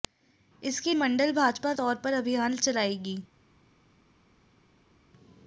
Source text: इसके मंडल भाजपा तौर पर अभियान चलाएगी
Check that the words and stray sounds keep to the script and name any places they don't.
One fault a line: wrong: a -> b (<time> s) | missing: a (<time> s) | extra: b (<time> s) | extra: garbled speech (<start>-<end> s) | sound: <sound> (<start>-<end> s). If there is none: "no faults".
no faults